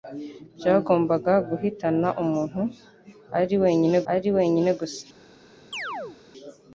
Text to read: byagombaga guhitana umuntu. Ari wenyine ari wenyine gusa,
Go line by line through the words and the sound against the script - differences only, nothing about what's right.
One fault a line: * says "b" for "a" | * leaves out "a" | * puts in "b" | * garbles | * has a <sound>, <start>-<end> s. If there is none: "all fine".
* has a chirp, 5.7-6.2 s